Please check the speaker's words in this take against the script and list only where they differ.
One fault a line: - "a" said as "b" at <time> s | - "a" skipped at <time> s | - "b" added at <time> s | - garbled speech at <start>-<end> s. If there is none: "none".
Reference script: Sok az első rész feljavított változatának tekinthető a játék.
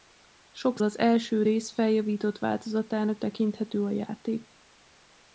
none